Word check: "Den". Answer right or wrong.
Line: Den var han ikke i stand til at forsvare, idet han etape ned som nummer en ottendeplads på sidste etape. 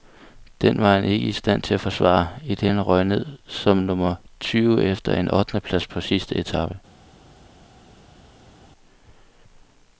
right